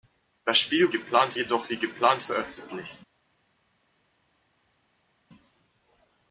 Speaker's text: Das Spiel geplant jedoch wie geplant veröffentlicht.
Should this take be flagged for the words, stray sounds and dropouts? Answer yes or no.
no